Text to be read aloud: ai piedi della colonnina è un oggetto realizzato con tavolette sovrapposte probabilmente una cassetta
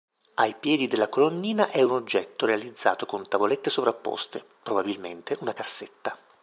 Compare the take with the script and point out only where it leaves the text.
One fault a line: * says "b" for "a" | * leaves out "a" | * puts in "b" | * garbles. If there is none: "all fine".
all fine